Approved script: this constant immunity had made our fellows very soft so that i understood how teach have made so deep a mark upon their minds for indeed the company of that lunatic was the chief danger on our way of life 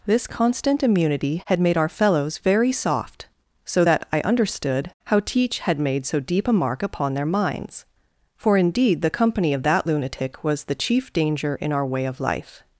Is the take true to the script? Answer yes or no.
no